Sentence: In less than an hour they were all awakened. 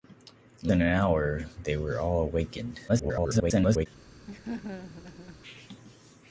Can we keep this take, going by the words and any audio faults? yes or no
no